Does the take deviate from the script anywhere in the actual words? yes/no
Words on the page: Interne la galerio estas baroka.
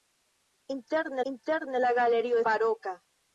yes